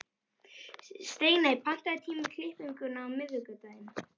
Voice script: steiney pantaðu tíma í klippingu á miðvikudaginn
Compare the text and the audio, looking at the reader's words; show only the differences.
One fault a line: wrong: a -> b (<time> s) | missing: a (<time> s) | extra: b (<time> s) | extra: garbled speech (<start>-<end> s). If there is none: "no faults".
no faults